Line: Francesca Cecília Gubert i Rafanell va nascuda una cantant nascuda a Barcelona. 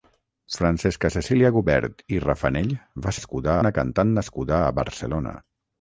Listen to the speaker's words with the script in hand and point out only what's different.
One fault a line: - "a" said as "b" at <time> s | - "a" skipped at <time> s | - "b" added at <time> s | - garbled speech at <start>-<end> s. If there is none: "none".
none